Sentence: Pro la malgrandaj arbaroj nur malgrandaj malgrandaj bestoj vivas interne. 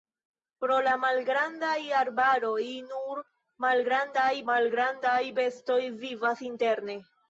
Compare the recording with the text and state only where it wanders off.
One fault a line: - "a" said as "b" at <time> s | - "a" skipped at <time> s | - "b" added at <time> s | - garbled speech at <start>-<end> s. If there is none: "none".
none